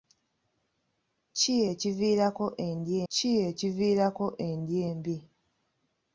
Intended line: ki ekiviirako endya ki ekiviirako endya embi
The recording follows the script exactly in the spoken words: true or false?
true